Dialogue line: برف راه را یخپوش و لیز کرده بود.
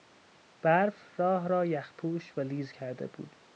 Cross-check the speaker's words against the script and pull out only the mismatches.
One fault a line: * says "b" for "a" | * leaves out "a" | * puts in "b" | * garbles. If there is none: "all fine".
all fine